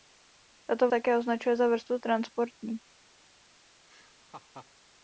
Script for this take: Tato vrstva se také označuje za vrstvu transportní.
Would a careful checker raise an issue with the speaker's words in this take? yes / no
yes